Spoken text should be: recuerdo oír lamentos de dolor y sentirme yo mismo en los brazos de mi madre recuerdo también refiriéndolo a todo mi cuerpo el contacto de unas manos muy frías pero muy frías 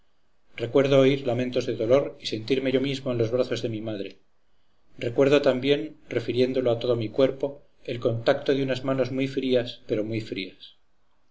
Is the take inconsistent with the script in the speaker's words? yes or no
no